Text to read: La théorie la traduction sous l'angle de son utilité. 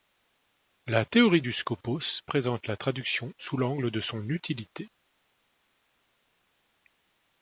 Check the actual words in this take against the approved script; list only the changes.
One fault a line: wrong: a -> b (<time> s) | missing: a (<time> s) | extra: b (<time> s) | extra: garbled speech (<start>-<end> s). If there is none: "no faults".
extra: du skopos présente (1.4 s)